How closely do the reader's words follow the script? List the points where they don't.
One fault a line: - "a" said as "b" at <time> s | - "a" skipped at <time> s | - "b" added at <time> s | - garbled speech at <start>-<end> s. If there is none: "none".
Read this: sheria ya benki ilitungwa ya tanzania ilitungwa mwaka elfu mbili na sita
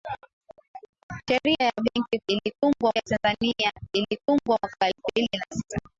none